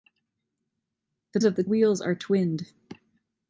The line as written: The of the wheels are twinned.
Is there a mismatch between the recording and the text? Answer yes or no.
no